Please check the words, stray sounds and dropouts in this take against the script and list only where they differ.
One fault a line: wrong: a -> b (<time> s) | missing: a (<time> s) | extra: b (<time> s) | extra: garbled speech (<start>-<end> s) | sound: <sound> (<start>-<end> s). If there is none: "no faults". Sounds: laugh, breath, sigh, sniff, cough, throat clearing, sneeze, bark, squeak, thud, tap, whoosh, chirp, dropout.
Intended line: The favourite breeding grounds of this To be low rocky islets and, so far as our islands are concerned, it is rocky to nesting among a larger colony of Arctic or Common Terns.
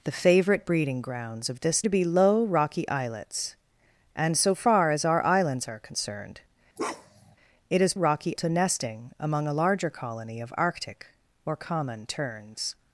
sound: bark (6.8-7.4 s)